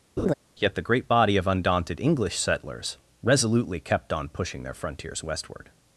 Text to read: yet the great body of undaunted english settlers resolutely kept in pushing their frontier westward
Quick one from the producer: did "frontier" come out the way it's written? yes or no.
no